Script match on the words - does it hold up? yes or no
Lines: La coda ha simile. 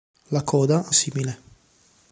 yes